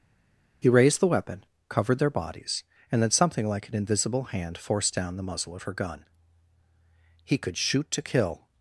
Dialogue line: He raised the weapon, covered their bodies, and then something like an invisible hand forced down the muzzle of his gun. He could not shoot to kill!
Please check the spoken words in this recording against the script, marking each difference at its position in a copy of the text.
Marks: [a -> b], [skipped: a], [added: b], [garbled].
He raised the weapon, covered their bodies, and then something like an invisible hand forced down the muzzle of [his -> her] gun. He could [skipped: not] shoot to kill!